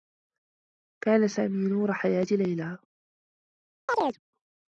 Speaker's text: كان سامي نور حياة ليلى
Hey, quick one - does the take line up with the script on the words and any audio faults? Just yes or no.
no